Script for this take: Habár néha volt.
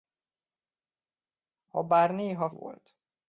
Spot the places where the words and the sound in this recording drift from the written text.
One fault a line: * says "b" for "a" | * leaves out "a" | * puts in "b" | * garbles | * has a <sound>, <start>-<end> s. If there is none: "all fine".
all fine